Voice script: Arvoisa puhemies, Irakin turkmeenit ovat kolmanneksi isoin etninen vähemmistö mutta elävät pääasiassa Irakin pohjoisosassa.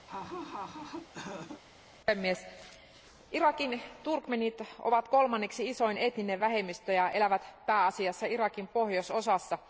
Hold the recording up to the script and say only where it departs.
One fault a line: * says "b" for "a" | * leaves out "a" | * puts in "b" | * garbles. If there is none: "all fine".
* says "ja" for "mutta"